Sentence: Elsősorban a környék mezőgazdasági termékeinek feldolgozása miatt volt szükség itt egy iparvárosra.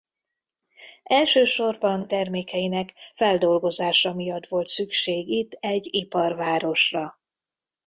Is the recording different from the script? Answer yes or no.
yes